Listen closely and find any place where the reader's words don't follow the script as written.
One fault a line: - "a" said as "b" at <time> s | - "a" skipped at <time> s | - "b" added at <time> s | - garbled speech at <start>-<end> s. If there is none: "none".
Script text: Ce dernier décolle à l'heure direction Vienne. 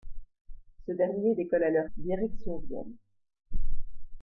none